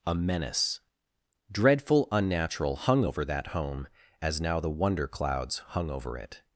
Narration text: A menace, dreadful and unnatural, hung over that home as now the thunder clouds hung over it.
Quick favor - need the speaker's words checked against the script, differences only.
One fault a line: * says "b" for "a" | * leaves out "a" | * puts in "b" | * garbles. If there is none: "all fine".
* leaves out "and"
* says "wonder" for "thunder"